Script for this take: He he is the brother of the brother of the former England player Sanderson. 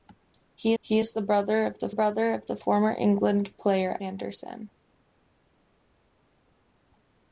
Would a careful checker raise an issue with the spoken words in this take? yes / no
no